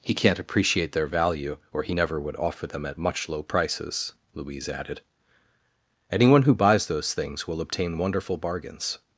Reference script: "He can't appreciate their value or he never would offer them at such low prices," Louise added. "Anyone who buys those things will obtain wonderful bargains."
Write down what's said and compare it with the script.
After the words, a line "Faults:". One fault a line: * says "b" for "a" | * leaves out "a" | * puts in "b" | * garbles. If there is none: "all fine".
"He can't appreciate their value or he never would offer them at much low prices," Louise added. "Anyone who buys those things will obtain wonderful bargains."
Faults:
* says "much" for "such"